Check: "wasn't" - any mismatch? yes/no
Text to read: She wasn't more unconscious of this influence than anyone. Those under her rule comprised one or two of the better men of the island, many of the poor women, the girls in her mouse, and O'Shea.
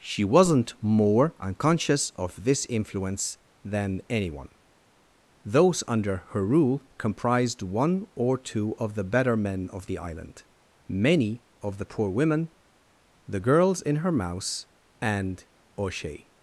no